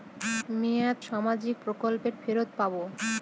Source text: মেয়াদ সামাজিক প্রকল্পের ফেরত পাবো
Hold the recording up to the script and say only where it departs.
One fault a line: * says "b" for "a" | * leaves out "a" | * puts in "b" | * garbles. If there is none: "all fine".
all fine